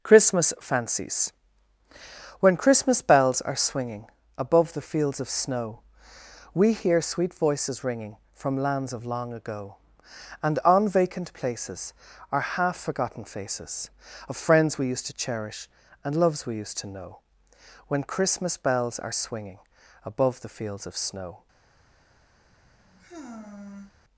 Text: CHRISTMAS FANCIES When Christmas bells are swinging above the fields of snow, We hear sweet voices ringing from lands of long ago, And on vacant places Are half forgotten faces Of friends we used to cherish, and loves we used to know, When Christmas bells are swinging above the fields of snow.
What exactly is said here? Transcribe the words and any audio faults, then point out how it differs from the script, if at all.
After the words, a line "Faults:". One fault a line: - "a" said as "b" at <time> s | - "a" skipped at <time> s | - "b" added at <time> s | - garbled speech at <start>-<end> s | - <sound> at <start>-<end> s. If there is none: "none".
CHRISTMAS FANCIES When Christmas bells are swinging above the fields of snow, We hear sweet voices ringing from lands of long ago, And on vacant places Are half forgotten faces Of friends we used to cherish, and loves we used to know, When Christmas bells are swinging above the fields of snow.
Faults:
- sigh at 22.4-23.9 s